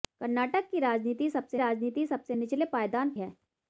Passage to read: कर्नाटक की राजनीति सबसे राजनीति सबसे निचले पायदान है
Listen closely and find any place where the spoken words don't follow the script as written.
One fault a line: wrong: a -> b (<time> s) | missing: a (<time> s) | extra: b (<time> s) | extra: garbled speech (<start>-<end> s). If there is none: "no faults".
no faults